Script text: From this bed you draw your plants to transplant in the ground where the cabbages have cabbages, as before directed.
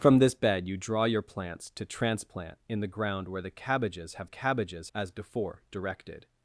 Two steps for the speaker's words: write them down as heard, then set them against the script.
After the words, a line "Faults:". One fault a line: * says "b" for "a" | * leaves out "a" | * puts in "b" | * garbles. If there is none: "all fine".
From this bed you draw your plants to transplant in the ground where the cabbages have cabbages, as before directed.
Faults:
all fine